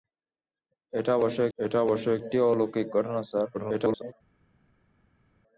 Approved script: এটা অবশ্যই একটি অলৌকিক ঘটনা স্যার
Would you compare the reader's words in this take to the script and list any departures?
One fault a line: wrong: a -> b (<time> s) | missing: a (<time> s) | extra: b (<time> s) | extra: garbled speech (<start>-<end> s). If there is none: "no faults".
extra: এটা অবশ্যই (1.6 s)
extra: garbled speech (3.5-4.1 s)